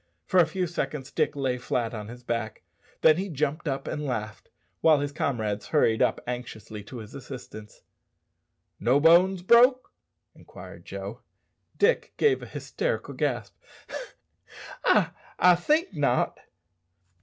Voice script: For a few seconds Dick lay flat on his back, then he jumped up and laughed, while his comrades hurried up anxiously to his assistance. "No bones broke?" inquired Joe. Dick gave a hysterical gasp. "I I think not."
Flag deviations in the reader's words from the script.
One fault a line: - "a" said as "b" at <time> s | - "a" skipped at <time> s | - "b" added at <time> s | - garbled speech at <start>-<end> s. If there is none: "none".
none